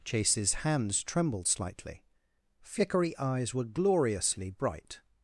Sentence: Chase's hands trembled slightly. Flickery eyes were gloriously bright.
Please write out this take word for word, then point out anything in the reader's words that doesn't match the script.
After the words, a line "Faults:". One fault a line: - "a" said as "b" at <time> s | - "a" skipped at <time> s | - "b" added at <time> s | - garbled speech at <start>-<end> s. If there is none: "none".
Chase's hands trembled slightly. Flickery eyes were gloriously bright.
Faults:
none